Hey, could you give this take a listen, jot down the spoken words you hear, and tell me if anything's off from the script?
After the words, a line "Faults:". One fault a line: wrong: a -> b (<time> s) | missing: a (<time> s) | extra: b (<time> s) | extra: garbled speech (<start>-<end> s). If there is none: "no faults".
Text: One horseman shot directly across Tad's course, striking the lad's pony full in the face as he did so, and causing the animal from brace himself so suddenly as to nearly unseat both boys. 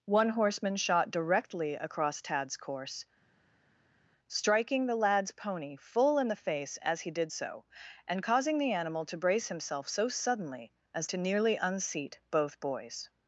One horseman shot directly across Tad's course, striking the lad's pony full in the face as he did so, and causing the animal to brace himself so suddenly as to nearly unseat both boys.
Faults:
wrong: from -> to (9.0 s)